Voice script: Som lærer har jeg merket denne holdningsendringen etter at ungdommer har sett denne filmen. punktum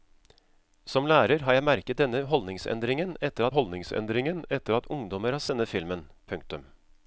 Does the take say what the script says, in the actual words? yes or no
no